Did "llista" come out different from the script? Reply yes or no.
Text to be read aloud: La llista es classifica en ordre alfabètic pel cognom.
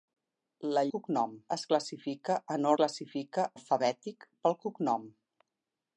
yes